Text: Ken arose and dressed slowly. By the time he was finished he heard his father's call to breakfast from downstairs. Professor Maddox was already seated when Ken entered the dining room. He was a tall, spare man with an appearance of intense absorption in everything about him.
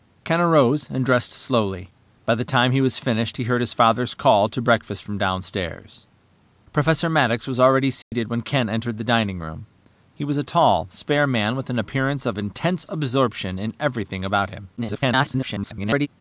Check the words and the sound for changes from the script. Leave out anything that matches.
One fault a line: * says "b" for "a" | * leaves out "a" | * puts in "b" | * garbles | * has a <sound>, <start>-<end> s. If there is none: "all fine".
* has a dropout, 8.0-8.1 s
* garbles